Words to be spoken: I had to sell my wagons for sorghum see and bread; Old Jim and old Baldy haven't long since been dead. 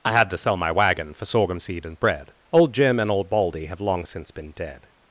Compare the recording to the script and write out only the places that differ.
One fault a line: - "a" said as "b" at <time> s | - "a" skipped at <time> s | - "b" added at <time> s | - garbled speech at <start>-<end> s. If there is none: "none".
- "wagons" said as "wagon" at 0.7 s
- "see" said as "seed" at 1.6 s
- "haven't" said as "have" at 3.7 s